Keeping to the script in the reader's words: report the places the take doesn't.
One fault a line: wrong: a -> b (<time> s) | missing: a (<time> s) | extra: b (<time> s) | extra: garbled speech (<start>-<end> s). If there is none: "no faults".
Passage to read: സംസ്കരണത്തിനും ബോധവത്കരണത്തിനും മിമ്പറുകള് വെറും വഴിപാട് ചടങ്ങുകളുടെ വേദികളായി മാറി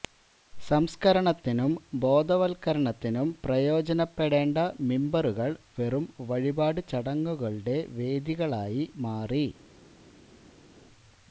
extra: പ്രയോജനപ്പെടേണ്ട (3.4 s)